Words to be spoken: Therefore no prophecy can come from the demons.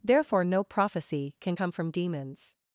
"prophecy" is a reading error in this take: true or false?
false